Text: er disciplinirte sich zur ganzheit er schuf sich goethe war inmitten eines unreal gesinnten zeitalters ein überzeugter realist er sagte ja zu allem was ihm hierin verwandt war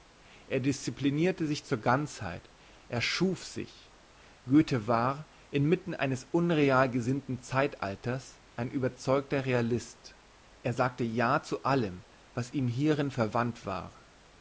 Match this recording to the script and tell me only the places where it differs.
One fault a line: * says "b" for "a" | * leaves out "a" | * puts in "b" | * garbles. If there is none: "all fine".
all fine